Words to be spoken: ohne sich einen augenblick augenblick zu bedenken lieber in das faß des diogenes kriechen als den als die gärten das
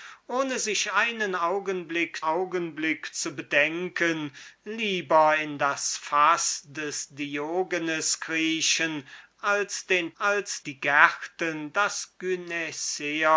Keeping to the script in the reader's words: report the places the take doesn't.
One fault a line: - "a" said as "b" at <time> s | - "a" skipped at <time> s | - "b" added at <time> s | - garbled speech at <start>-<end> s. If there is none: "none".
none